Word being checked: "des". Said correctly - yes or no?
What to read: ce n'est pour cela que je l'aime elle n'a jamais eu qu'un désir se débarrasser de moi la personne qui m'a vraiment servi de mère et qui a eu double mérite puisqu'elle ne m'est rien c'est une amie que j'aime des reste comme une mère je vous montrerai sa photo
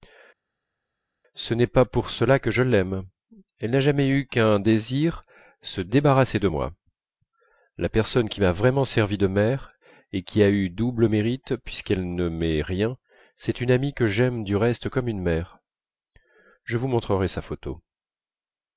no